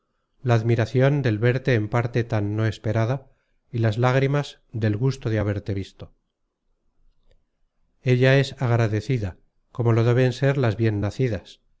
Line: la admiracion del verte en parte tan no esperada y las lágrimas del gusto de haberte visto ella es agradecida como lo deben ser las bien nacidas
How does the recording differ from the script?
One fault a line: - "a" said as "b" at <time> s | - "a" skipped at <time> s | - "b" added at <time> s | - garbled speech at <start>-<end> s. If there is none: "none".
none